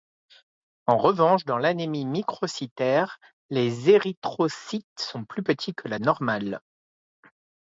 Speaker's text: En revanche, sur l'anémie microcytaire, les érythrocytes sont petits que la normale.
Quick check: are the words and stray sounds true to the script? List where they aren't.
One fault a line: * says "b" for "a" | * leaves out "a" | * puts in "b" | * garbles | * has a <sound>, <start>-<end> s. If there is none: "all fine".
* says "dans" for "sur"
* puts in "plus"